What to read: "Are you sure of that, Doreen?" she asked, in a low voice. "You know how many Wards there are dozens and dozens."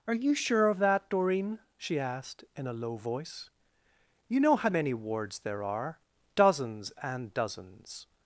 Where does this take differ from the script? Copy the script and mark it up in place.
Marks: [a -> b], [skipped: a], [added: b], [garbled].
"Are you sure of that, Doreen?" she asked, in a low voice. "You know how many Wards there are dozens and dozens."